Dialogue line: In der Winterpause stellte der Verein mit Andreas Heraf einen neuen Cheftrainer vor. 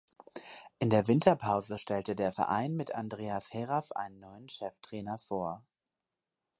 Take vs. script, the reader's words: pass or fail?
pass